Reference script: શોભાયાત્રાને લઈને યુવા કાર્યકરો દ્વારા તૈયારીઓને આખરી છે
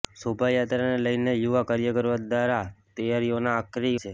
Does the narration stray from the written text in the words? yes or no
no